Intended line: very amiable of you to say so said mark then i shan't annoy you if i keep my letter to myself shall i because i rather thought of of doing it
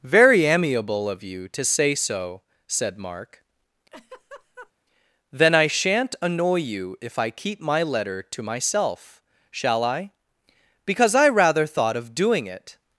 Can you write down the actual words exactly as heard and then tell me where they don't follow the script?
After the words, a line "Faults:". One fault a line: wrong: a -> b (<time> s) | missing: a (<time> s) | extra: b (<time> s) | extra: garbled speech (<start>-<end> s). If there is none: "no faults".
very amiable of you to say so said mark then i shan't annoy you if i keep my letter to myself shall i because i rather thought of doing it
Faults:
missing: of (12.1 s)